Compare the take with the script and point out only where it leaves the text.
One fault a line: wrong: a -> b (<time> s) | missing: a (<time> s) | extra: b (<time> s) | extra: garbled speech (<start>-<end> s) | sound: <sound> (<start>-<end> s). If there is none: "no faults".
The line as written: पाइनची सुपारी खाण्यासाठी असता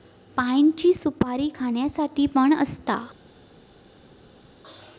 extra: पण (2.3 s)